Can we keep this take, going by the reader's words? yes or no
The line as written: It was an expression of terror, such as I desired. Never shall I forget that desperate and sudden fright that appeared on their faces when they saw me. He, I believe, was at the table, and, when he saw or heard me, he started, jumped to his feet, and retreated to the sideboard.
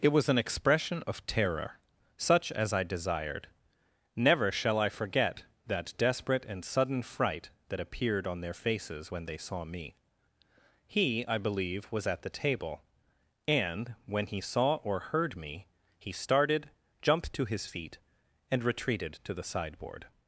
yes